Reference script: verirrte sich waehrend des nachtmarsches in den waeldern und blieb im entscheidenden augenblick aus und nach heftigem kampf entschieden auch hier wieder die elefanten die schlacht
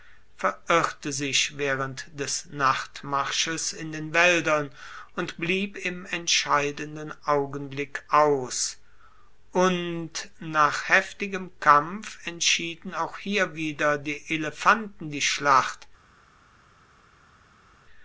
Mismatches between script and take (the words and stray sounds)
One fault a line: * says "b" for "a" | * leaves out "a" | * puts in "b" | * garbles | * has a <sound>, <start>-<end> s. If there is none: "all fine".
all fine